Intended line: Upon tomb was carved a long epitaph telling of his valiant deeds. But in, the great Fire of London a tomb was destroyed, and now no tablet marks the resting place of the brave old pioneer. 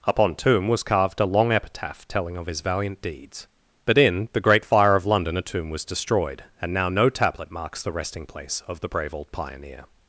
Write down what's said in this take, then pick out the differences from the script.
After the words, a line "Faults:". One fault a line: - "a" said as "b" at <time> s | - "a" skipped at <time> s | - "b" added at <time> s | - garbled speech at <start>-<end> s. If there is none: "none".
Upon tomb was carved a long epitaph telling of his valiant deeds. But in, the great Fire of London a tomb was destroyed, and now no tablet marks the resting place of the brave old pioneer.
Faults:
none